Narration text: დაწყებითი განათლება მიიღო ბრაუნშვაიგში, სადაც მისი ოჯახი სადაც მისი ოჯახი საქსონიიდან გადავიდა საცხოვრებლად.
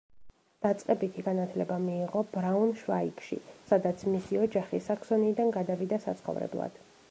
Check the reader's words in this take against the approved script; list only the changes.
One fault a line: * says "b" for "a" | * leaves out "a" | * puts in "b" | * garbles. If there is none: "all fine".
* leaves out "სადაც მისი ოჯახი"